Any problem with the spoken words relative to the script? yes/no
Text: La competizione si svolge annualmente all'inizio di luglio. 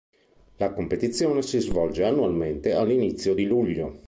no